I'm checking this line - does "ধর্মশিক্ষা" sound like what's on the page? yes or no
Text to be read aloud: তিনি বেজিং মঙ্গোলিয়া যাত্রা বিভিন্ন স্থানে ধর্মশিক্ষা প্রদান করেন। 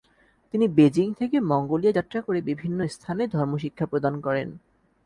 yes